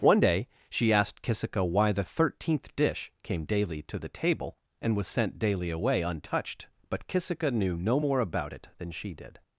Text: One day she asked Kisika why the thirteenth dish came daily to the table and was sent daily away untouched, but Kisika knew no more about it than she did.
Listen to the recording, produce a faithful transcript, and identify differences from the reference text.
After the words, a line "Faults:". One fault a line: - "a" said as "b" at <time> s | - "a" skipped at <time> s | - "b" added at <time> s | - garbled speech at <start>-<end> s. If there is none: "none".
One day she asked Kisika why the thirteenth dish came daily to the table and was sent daily away untouched, but Kisika knew no more about it than she did.
Faults:
none